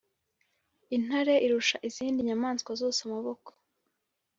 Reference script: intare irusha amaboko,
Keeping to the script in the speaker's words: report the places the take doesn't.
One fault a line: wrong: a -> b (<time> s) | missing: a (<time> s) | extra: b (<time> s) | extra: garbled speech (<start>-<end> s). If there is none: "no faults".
extra: izindi nyamaswa zose (1.9 s)